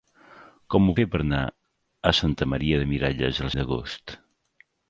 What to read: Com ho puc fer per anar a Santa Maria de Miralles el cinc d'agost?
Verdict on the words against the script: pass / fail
fail